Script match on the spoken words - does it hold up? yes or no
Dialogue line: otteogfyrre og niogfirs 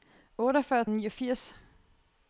yes